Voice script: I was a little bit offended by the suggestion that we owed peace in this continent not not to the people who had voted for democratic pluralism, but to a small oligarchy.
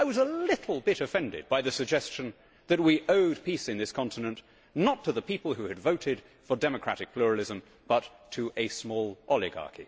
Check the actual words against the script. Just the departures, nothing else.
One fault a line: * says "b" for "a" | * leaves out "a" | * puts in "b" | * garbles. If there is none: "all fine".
* leaves out "not"